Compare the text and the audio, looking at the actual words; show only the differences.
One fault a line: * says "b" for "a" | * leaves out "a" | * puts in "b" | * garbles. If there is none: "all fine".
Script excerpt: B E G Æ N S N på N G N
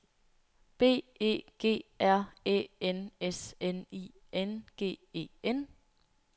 * puts in "R"
* says "I" for "på"
* puts in "E"